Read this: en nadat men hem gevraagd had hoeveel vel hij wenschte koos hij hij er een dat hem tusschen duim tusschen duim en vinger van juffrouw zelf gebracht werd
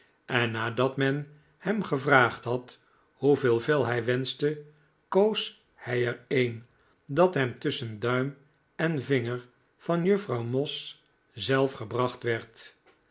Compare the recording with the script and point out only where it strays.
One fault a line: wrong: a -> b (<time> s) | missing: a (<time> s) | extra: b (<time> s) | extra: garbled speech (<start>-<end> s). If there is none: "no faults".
missing: hij (6.1 s)
missing: tusschen duim (8.4 s)
extra: moss (10.4 s)